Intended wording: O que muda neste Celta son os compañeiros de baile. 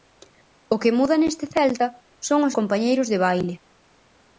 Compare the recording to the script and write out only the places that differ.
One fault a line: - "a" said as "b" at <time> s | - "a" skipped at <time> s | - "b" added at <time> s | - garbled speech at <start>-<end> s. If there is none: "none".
none